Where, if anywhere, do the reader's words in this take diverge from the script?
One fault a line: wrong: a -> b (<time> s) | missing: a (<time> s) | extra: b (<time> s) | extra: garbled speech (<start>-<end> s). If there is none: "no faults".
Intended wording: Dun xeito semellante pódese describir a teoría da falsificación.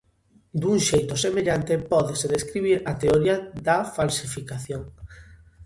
no faults